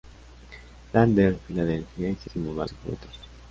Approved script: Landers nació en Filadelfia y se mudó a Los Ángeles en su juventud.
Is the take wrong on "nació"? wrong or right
wrong